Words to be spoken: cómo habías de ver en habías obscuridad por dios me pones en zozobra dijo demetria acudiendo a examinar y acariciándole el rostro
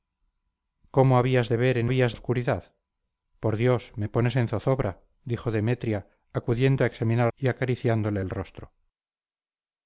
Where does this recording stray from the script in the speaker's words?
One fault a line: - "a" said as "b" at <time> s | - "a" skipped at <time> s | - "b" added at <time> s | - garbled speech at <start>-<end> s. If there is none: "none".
none